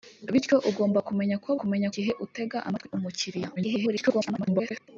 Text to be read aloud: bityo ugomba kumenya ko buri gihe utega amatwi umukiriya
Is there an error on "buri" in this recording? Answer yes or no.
yes